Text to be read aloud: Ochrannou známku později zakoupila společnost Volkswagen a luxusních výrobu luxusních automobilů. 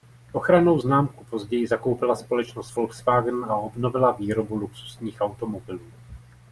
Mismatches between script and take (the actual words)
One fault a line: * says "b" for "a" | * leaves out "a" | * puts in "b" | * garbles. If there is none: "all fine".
* says "obnovila" for "luxusních"